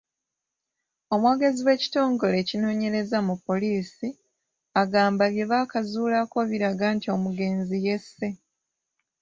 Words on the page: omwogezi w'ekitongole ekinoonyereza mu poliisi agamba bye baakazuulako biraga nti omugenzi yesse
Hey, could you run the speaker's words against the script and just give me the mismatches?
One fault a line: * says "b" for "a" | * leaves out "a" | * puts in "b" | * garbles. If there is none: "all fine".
all fine